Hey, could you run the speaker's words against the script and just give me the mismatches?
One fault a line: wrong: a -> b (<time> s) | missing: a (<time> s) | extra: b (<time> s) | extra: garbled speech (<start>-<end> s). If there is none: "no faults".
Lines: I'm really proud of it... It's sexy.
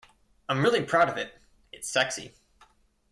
no faults